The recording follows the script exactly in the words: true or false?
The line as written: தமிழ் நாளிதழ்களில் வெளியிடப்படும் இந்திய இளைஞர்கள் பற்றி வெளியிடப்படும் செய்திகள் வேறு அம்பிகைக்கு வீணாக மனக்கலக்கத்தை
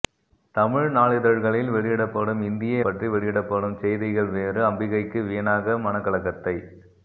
false